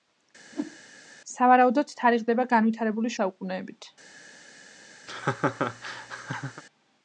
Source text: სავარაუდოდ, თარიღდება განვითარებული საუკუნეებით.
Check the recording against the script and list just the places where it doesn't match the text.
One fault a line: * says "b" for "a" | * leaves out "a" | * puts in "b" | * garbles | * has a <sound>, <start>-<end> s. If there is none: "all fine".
* has a whoosh, 0.5-0.8 s
* has a laugh, 5.1-6.6 s